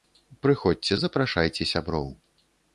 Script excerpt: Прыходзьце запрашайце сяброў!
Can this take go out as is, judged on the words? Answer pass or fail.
pass